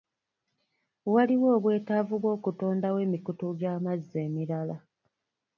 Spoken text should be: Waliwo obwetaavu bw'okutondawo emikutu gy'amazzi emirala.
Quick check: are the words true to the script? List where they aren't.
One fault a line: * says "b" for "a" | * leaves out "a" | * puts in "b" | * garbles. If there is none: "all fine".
all fine